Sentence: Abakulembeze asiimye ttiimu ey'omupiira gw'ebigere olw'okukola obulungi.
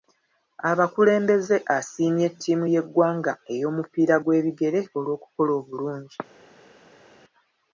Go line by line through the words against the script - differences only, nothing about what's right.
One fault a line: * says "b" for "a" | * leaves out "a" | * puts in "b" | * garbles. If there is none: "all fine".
* puts in "y'eggwanga"